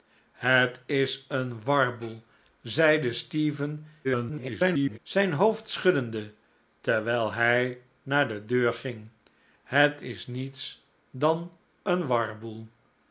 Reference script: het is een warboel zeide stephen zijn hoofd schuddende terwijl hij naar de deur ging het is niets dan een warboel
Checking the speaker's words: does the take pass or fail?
fail